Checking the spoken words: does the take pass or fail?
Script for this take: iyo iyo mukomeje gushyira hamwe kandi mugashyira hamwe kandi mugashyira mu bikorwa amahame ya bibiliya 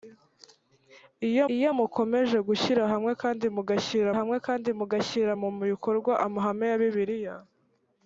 pass